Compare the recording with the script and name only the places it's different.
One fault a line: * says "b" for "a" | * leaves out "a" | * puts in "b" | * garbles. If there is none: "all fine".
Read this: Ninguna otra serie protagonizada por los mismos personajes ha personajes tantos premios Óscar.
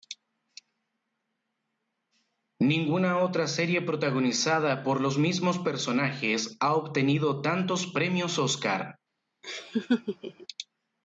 * says "obtenido" for "personajes"